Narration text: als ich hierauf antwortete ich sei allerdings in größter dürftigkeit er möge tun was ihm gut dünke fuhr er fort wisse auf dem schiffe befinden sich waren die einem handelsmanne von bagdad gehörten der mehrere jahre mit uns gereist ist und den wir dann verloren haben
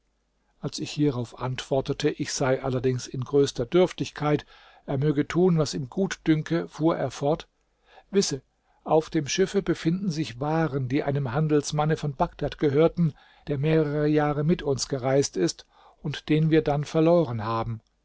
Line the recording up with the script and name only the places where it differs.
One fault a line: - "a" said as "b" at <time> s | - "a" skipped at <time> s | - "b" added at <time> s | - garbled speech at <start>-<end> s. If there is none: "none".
none